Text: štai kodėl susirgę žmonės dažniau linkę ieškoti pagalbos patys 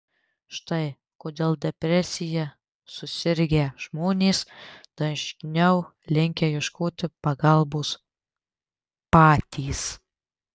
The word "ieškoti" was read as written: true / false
true